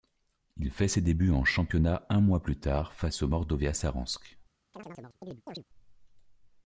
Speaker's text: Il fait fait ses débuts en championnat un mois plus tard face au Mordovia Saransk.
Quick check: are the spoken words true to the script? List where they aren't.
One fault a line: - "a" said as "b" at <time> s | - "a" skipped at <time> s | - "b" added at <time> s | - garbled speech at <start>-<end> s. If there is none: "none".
- "fait" skipped at 0.9 s